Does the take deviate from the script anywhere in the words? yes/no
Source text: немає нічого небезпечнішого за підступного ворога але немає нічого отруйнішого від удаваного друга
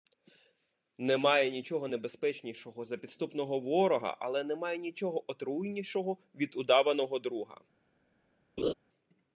no